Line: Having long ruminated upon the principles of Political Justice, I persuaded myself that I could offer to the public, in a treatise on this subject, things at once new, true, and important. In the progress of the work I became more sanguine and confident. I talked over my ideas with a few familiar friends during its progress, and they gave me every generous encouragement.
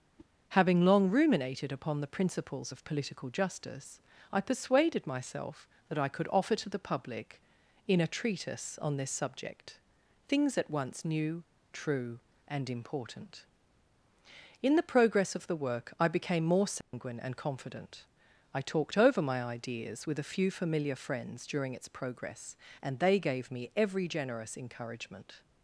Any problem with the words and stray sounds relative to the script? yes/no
yes